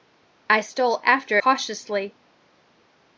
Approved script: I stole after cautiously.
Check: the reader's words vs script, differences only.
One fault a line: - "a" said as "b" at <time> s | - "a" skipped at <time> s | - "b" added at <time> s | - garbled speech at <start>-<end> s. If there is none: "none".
none